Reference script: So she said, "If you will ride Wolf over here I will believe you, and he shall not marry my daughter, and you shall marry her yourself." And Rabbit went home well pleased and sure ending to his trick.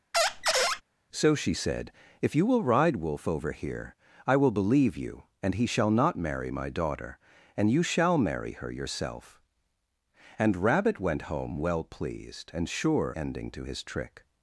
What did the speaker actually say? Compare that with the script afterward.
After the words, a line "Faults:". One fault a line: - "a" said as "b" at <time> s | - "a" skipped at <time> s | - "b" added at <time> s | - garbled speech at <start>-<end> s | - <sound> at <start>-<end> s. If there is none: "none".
So she said, "If you will ride Wolf over here I will believe you, and he shall not marry my daughter, and you shall marry her yourself." And Rabbit went home well pleased and sure ending to his trick.
Faults:
- squeak at 0.1-0.8 s